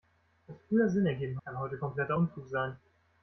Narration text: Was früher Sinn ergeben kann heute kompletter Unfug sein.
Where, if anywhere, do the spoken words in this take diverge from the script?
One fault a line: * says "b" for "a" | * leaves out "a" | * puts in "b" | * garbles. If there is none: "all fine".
all fine